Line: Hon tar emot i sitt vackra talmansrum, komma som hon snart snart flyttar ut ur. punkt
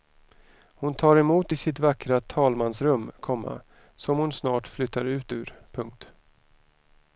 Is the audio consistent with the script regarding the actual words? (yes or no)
no